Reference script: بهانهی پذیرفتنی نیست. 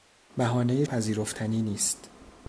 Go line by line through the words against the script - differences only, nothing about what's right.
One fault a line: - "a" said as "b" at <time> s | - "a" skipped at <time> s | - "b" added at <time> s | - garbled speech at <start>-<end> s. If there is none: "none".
none